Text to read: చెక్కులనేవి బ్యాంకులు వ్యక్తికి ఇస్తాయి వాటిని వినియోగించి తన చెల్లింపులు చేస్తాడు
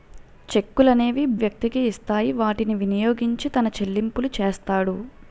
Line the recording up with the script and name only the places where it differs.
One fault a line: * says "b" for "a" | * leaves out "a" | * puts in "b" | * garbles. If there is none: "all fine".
* leaves out "బ్యాంకులు"